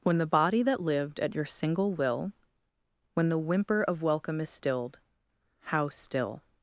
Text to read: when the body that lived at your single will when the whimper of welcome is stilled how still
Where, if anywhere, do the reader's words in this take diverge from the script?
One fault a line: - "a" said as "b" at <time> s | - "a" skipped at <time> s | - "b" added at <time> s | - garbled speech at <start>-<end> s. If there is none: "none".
none